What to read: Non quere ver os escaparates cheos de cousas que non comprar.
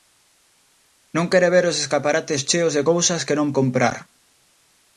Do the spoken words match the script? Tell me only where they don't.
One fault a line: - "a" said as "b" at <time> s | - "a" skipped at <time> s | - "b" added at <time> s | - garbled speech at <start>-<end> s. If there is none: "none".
none